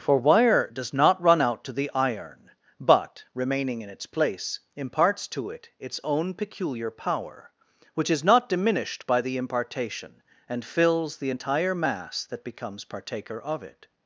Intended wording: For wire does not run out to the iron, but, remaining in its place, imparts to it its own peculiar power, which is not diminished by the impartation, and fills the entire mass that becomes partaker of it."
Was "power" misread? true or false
false